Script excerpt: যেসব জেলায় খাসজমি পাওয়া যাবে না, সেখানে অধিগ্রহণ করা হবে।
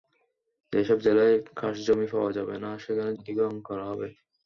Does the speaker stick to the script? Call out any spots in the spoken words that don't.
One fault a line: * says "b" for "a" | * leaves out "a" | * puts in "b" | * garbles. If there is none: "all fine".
all fine